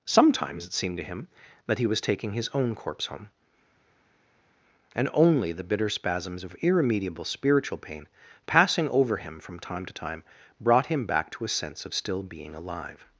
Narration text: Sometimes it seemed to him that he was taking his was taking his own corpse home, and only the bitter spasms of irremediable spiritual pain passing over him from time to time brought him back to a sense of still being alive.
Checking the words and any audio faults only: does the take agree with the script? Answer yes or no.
no